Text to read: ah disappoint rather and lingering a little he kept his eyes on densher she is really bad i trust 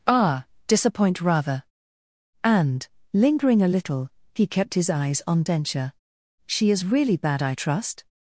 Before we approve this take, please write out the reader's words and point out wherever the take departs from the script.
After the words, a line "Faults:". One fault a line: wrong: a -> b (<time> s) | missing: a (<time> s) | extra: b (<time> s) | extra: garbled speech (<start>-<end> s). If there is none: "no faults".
ah disappoint rather and lingering a little he kept his eyes on densher she is really bad i trust
Faults:
no faults